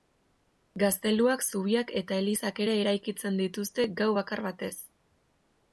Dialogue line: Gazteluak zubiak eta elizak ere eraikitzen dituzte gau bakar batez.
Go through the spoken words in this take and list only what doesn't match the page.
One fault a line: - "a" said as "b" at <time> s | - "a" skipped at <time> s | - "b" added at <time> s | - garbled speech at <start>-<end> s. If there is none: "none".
none